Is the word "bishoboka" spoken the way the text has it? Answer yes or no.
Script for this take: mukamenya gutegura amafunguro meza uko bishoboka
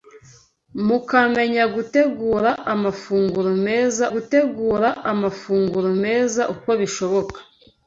yes